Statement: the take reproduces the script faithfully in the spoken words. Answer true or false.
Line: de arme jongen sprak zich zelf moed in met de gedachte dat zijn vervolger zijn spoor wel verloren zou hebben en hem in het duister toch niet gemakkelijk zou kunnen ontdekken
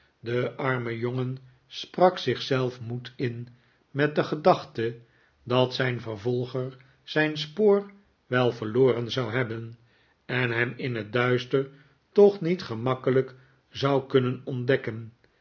true